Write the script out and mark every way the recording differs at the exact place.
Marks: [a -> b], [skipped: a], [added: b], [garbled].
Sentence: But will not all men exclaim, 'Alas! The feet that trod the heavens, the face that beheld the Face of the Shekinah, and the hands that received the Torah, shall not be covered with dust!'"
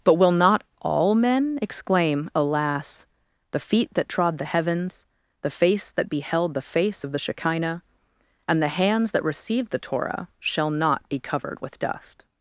But will not all men exclaim, 'Alas! The feet that trod the heavens, the face that beheld the Face of the Shekinah, and the hands that received the Torah, shall not be covered with dust!'"